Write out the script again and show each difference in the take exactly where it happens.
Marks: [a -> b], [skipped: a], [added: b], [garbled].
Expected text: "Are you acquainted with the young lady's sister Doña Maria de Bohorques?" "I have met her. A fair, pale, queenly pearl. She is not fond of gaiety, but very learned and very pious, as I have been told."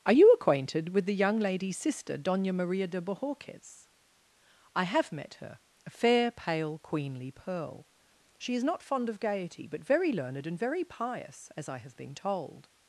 "Are you acquainted with the young lady's sister Doña Maria de Bohorques?" "I have met her. A fair, pale, queenly pearl. She is not fond of gaiety, but very learned and very pious, as I have been told."